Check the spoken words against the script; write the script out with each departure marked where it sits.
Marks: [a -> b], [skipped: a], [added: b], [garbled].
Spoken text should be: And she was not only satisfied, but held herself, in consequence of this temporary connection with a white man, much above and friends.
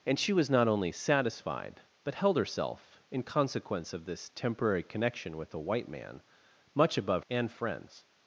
And she was not only satisfied, but held herself, in consequence of this temporary connection with a white man, much above and friends.